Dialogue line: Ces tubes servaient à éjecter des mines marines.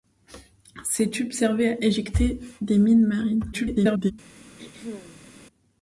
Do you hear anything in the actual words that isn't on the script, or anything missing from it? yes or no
yes